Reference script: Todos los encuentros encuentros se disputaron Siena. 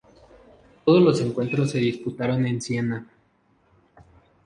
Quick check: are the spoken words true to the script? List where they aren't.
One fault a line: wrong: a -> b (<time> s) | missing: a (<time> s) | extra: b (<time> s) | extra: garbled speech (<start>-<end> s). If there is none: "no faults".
missing: encuentros (1.7 s)
extra: en (2.5 s)